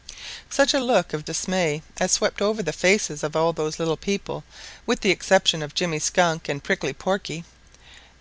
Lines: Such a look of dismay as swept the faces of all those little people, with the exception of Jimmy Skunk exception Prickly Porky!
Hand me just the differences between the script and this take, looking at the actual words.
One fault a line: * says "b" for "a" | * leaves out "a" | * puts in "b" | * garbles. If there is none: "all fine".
* puts in "over"
* says "and" for "exception"